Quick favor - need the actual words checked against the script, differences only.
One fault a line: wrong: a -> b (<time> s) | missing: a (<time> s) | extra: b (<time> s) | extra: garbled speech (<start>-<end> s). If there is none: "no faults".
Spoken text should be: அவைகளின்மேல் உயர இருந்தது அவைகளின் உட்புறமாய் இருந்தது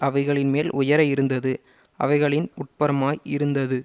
no faults